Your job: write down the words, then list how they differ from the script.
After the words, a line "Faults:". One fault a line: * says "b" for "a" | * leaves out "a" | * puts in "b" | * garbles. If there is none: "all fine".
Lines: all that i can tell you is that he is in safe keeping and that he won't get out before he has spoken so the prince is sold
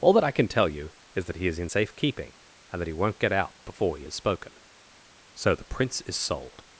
all that i can tell you is that he is in safe keeping and that he won't get out before he has spoken so the prince is sold
Faults:
all fine